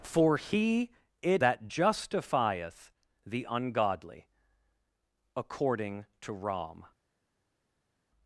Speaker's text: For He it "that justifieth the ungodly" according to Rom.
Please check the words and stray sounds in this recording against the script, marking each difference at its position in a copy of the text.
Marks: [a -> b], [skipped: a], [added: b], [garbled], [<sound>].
For He it "that justifieth the ungodly" according to Rom.